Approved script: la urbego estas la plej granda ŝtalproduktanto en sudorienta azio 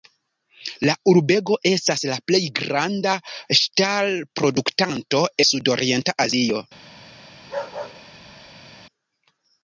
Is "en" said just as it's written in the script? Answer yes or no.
no